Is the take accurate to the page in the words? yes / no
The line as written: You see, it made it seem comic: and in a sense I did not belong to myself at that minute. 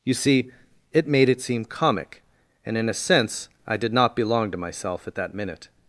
yes